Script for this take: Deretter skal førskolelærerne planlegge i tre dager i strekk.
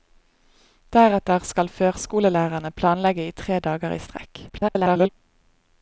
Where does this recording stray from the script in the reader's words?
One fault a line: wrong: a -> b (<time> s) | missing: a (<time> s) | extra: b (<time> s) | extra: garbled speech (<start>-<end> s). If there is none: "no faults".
extra: garbled speech (4.5-5.1 s)